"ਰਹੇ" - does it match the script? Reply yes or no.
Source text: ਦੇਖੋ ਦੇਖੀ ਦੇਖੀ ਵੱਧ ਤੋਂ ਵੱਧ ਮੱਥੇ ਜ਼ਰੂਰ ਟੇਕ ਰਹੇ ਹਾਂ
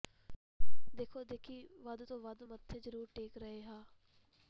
yes